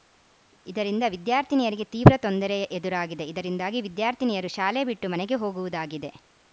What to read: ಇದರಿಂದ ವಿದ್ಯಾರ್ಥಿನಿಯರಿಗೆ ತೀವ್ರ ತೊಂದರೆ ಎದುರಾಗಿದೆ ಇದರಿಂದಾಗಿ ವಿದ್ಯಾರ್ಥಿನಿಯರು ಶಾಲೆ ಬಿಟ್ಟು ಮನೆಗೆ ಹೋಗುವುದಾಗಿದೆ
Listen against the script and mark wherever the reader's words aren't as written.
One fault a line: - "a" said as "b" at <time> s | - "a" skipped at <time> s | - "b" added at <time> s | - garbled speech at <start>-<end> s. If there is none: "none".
none